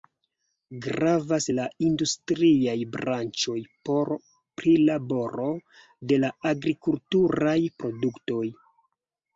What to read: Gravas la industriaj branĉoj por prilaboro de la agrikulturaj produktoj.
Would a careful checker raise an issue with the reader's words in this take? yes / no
no